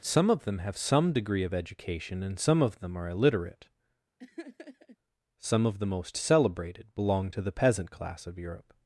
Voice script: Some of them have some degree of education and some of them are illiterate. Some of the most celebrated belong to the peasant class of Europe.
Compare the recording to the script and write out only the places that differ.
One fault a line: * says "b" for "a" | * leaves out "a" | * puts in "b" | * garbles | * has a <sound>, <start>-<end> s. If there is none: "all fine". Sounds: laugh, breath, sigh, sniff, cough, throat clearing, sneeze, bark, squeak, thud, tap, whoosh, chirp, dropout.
* has a laugh, 4.2-5.0 s